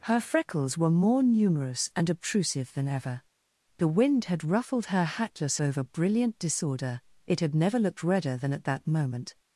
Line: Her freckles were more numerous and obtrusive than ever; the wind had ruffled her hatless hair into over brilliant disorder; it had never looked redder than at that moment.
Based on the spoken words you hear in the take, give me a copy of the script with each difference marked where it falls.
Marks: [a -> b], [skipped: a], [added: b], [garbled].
Her freckles were more numerous and obtrusive than ever; the wind had ruffled her hatless [skipped: hair into] over brilliant disorder; it had never looked redder than at that moment.